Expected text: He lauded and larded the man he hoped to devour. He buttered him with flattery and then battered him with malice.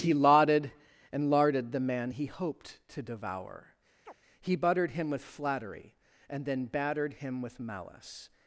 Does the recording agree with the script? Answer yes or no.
yes